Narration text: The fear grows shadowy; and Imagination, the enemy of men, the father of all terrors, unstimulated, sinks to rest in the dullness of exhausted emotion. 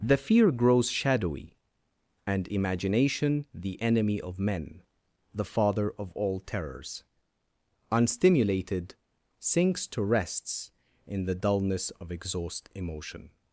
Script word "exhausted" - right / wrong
wrong